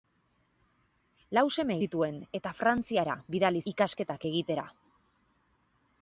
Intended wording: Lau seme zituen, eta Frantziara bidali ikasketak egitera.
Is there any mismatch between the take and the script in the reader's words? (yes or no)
no